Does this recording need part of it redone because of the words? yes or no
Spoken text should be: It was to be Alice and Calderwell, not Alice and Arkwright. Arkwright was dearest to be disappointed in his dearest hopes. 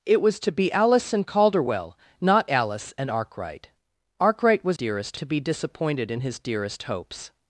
no